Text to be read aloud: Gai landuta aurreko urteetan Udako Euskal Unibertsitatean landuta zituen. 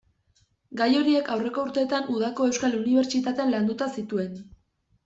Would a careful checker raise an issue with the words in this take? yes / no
yes